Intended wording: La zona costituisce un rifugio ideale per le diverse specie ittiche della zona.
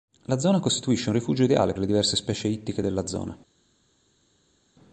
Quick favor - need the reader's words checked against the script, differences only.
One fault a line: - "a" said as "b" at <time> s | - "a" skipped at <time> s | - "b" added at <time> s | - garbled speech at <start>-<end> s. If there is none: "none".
- "per" skipped at 1.8 s